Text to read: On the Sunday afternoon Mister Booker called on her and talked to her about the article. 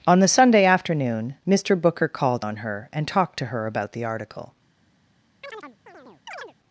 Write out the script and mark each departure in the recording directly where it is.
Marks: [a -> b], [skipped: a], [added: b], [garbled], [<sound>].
On the Sunday afternoon Mister Booker called on her and talked to her about the article. [chirp]